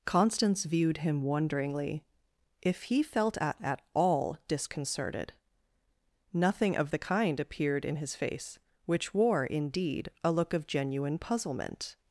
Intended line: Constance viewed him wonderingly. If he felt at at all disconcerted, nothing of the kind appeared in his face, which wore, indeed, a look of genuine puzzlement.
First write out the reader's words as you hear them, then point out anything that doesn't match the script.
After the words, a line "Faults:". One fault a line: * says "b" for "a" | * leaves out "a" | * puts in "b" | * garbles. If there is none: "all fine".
Constance viewed him wonderingly. If he felt at at all disconcerted, nothing of the kind appeared in his face, which wore, indeed, a look of genuine puzzlement.
Faults:
all fine